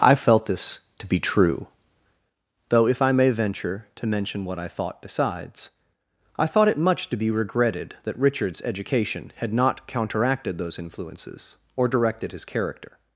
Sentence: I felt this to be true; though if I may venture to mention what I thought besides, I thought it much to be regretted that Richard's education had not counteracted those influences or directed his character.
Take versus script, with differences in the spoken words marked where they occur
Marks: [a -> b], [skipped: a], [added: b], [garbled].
I felt this to be true; though if I may venture to mention what I thought besides, I thought it much to be regretted that Richard's education had not counteracted those influences or directed his character.